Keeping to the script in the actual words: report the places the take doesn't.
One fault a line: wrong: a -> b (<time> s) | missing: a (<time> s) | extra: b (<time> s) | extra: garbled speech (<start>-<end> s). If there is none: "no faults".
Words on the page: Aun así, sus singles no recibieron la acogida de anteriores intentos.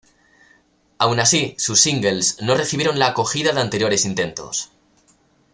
no faults